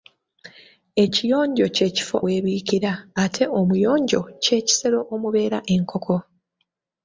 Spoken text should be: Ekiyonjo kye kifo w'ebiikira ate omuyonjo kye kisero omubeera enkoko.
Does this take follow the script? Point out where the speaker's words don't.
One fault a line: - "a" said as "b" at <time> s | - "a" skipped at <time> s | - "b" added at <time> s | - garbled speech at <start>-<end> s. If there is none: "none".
none